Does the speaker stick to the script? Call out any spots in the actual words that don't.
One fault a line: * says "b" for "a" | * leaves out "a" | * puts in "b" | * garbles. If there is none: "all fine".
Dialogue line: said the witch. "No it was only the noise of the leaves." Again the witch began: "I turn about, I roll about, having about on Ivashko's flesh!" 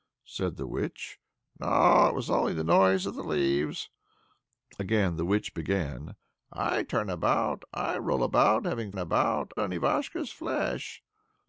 all fine